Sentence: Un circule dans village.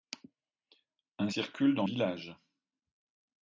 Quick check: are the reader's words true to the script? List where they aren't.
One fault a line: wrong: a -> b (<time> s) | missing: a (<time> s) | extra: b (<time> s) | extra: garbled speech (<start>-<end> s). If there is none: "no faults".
no faults